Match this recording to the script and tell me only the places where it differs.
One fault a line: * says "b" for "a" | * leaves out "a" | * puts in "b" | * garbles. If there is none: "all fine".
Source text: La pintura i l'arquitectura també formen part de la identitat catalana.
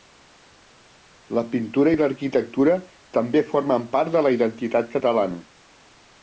all fine